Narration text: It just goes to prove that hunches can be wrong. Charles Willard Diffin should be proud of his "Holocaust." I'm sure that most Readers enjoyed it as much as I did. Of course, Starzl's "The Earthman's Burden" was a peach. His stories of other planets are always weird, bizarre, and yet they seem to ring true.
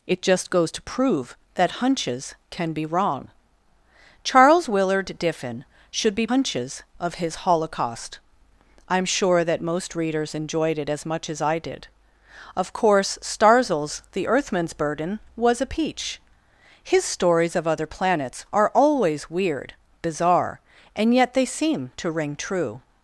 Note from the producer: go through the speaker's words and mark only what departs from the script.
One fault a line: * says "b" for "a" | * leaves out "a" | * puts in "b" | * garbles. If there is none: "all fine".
* says "hunches" for "proud"